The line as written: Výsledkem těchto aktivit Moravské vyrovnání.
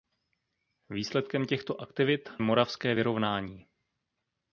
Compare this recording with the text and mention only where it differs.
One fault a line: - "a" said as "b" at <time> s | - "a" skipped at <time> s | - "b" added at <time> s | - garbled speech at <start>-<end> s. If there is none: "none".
none